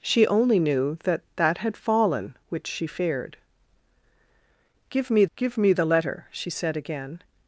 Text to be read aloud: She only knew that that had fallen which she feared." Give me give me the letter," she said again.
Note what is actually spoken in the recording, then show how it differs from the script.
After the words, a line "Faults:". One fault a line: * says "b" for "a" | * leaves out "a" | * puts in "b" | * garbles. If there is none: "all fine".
She only knew that that had fallen which she feared." Give me give me the letter," she said again.
Faults:
all fine